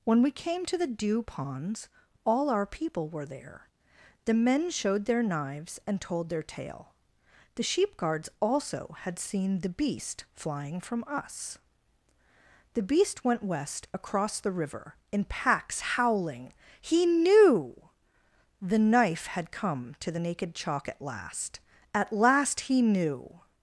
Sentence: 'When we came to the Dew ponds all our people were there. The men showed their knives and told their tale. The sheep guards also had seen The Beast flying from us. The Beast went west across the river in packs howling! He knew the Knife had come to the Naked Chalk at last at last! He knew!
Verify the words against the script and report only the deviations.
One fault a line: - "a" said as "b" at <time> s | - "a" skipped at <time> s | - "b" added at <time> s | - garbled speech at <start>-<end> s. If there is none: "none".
none